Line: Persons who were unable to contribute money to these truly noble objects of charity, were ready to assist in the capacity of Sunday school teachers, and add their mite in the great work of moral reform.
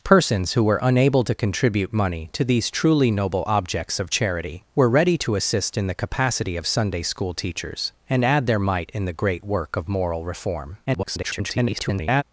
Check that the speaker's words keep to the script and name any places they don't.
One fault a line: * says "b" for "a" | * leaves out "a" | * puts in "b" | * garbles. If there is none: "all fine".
* garbles